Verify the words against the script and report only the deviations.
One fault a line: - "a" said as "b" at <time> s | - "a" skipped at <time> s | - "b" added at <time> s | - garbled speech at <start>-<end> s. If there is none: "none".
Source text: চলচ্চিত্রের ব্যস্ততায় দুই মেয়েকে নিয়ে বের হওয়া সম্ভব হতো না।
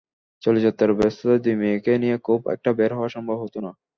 - "খুব একটা" added at 2.2 s